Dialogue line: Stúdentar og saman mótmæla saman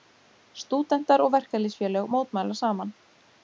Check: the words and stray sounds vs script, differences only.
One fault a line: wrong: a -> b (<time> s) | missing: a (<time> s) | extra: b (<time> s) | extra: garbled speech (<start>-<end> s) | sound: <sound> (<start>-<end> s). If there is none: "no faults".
wrong: saman -> verkalýðsfélög (1.4 s)